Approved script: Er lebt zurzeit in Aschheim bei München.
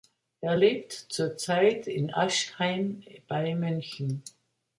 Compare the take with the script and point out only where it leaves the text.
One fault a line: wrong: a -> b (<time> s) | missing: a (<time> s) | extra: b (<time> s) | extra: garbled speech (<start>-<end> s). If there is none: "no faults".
no faults